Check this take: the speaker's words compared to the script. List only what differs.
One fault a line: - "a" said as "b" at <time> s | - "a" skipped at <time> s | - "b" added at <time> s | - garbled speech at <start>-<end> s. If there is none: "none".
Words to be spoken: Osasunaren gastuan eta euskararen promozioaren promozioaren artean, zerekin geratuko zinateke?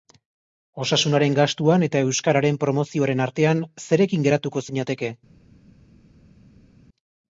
- "promozioaren" skipped at 3.2 s